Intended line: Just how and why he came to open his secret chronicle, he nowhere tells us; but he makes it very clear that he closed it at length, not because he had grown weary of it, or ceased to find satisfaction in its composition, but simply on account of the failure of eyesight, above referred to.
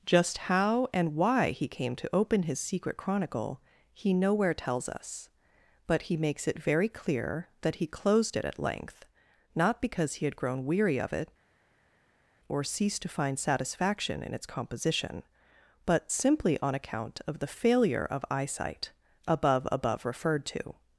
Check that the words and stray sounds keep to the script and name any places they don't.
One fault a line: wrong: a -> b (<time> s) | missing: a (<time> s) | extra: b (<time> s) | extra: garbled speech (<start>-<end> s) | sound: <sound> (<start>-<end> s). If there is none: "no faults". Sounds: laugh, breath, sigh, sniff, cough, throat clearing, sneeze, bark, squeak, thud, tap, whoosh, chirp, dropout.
extra: above (19.7 s)